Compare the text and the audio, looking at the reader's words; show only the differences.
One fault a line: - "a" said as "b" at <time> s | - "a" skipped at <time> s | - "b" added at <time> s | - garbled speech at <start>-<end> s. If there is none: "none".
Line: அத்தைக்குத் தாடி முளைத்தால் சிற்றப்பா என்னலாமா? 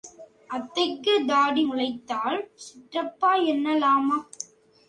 none